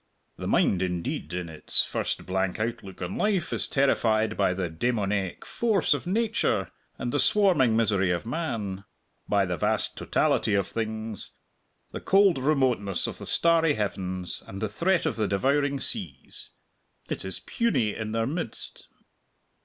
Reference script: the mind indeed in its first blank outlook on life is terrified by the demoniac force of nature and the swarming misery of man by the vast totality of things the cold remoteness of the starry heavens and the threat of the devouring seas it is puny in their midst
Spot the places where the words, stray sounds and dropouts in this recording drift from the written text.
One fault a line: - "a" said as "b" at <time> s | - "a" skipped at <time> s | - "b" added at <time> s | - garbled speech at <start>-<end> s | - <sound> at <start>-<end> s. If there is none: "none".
none